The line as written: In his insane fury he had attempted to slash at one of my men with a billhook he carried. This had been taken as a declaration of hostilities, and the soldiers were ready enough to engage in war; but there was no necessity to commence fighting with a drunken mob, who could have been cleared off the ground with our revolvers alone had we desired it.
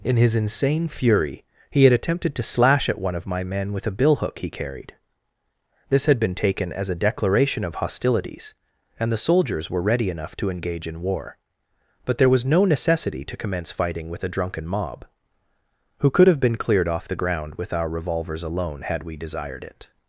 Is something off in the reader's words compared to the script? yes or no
no